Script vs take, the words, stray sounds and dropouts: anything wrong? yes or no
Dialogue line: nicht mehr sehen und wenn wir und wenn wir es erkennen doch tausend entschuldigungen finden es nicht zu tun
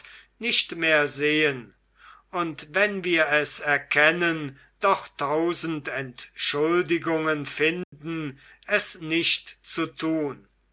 yes